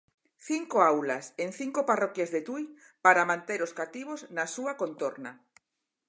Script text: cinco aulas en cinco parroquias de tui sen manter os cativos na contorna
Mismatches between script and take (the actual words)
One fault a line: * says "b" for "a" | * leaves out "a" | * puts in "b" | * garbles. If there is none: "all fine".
* says "para" for "sen"
* puts in "súa"